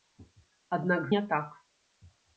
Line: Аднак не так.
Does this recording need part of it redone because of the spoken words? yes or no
no